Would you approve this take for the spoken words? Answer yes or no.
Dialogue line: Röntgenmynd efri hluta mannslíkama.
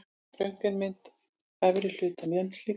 yes